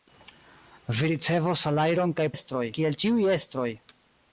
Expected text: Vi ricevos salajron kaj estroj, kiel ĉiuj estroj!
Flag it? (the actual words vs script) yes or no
no